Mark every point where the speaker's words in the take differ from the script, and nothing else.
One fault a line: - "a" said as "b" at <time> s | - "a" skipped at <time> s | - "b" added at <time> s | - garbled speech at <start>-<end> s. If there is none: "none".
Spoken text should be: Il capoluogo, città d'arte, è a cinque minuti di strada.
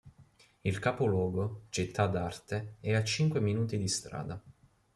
none